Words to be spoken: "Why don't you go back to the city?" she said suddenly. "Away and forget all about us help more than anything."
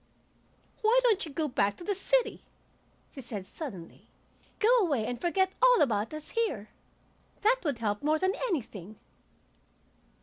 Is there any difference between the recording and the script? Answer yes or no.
yes